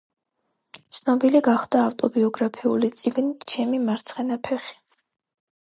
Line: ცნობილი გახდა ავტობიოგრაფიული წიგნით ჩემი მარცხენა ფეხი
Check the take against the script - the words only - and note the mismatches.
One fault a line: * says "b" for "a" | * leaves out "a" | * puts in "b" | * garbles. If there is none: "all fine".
all fine